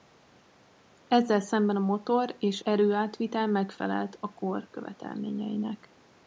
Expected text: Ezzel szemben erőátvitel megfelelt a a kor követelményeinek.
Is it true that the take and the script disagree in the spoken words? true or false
true